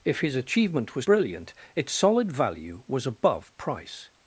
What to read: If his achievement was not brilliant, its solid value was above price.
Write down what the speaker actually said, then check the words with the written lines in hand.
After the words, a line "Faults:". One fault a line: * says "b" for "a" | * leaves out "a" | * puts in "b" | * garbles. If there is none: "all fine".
If his achievement was brilliant, its solid value was above price.
Faults:
* leaves out "not"